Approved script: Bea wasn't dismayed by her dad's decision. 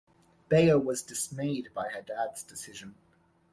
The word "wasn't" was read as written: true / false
false